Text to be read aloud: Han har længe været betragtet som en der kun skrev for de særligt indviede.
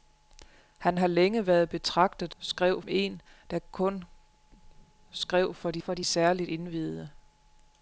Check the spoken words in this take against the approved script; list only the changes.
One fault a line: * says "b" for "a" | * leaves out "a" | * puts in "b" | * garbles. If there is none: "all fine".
* says "skrev" for "som"
* puts in "for de"